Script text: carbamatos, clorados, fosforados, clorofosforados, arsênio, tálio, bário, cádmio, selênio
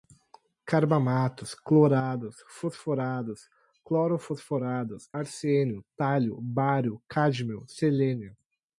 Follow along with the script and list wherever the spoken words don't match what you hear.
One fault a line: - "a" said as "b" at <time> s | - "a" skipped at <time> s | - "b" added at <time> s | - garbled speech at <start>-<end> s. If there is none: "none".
none